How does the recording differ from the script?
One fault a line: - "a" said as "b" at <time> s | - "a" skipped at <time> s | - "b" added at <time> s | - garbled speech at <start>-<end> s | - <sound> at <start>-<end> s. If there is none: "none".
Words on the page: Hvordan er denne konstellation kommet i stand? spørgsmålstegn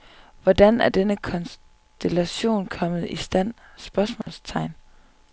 - dropout at 4.2-4.3 s